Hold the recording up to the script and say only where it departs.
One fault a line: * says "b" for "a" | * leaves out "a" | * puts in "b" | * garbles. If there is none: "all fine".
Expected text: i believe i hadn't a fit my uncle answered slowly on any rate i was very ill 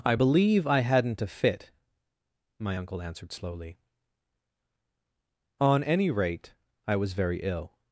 all fine